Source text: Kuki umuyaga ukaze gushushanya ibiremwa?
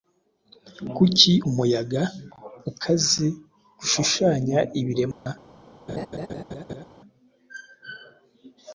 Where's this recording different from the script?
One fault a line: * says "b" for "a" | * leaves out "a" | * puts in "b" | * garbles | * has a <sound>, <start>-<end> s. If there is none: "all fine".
* has a dropout, 5.1-5.3 s
* has a laugh, 5.9-6.8 s